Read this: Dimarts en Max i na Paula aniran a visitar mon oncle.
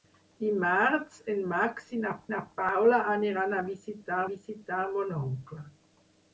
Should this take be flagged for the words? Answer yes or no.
yes